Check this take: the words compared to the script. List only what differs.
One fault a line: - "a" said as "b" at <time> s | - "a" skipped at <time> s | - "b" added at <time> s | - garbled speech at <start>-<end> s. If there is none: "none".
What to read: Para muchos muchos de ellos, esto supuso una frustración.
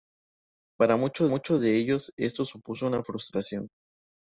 none